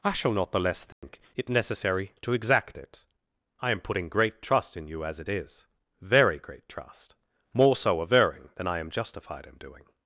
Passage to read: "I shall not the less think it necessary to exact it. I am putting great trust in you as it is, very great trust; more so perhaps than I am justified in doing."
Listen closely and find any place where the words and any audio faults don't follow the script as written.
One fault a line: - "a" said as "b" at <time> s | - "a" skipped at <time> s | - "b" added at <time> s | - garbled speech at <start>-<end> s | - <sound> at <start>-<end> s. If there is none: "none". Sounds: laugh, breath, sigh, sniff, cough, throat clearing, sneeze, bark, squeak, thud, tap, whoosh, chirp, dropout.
- dropout at 0.9-1.0 s
- "perhaps" said as "averring" at 8.0 s